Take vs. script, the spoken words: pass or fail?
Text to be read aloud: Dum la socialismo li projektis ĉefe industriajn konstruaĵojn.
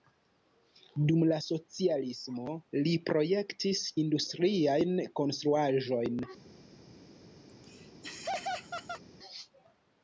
fail